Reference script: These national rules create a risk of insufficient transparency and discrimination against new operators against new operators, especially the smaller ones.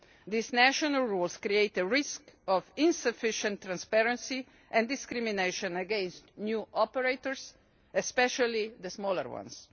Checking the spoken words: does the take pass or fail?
fail